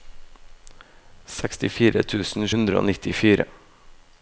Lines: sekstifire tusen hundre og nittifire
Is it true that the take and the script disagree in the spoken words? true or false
false